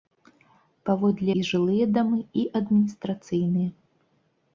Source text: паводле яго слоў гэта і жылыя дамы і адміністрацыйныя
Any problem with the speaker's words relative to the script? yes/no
yes